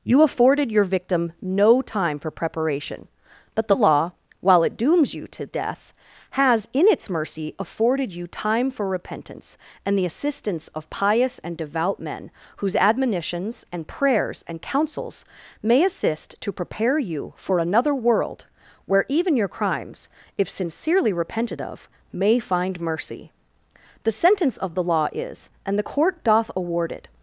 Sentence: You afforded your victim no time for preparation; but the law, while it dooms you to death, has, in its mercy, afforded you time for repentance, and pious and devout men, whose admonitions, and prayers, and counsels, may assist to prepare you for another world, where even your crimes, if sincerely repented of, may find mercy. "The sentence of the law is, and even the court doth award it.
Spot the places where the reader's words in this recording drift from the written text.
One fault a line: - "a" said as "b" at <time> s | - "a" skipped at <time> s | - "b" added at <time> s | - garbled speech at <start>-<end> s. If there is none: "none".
- "the assistance of" added at 9.9 s
- "even" skipped at 25.8 s